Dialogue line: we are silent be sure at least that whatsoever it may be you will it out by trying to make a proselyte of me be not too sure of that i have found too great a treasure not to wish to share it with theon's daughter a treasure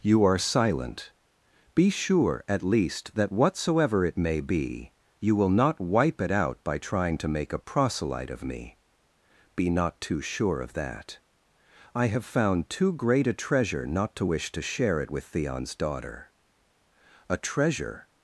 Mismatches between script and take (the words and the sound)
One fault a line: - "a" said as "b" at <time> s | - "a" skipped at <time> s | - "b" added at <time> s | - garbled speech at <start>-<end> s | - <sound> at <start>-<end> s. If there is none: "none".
- "we" said as "you" at 0.0 s
- "not wipe" added at 5.5 s